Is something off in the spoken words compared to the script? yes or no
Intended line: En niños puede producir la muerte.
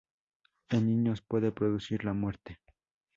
no